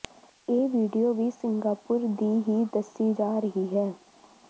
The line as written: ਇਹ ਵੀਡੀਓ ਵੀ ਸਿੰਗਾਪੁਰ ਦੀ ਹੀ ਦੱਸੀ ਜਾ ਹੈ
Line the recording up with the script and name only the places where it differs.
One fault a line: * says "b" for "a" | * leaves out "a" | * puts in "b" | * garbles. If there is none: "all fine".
* puts in "ਰਹੀ"